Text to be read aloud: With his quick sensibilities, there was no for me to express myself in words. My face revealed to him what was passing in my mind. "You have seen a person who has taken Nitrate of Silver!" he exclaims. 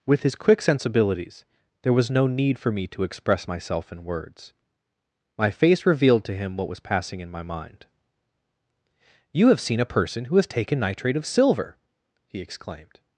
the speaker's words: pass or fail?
fail